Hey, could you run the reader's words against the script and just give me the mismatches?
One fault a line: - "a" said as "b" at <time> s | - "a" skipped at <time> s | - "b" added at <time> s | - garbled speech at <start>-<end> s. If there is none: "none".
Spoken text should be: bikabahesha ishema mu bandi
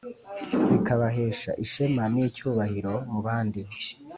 - "n'icyubahiro" added at 2.1 s